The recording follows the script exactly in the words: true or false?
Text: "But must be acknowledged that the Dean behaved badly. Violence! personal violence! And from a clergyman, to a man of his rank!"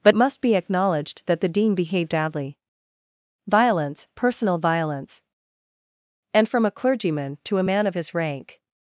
true